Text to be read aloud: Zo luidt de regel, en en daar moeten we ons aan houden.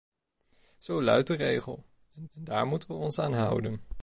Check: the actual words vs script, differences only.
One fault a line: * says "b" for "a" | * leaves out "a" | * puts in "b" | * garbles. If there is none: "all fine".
all fine